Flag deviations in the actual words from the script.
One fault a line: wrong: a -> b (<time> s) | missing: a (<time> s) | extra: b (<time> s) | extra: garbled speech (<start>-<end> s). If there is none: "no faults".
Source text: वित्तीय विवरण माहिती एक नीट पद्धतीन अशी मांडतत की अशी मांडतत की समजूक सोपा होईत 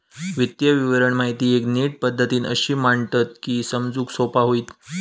missing: अशी मांडतत की (3.6 s)